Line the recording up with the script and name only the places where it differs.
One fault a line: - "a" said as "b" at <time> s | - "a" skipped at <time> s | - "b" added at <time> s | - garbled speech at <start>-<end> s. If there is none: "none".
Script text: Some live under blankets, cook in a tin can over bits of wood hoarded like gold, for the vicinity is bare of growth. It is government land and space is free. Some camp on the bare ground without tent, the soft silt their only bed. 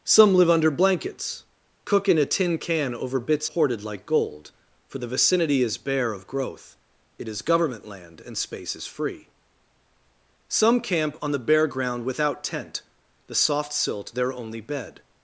- "of wood" skipped at 3.5 s